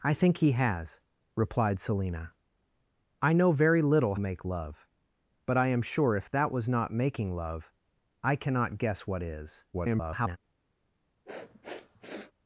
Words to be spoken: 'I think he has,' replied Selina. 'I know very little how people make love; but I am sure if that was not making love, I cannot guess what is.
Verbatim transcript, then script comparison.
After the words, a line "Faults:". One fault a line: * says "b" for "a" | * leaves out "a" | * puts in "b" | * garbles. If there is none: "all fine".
'I think he has,' replied Selina. 'I know very little make love; but I am sure if that was not making love, I cannot guess what is. [garbled]
Faults:
* leaves out "how people"
* garbles